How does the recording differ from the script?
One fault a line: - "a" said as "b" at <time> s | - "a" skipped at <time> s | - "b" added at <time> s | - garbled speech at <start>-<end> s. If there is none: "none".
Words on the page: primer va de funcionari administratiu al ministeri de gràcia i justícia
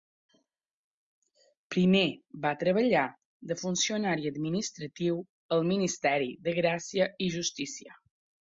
- "treballar" added at 2.6 s